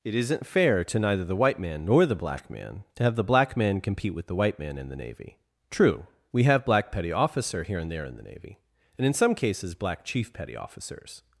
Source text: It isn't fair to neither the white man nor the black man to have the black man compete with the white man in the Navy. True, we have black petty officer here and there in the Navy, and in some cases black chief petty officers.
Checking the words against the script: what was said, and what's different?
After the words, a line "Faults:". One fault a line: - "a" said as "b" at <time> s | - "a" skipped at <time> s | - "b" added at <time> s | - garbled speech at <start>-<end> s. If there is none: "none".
It isn't fair to neither the white man nor the black man to have the black man compete with the white man in the Navy. True, we have black petty officer here and there in the Navy, and in some cases black chief petty officers.
Faults:
none